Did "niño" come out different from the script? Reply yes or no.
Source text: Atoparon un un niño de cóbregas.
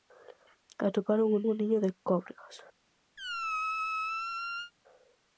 no